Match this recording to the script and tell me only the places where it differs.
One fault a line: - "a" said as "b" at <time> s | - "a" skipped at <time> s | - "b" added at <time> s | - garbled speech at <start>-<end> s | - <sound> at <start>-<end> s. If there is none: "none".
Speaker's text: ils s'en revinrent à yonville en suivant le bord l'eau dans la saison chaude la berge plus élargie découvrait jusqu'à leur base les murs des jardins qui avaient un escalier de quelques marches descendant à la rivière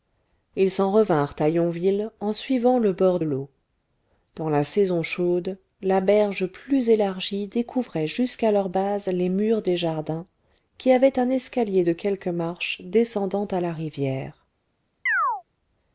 - chirp at 15.1-15.4 s